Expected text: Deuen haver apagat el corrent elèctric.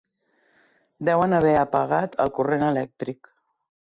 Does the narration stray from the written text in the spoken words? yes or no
no